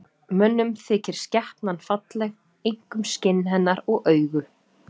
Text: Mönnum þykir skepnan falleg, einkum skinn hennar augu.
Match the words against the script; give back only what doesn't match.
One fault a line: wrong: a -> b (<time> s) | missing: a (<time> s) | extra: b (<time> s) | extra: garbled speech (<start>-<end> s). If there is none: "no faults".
extra: og (4.0 s)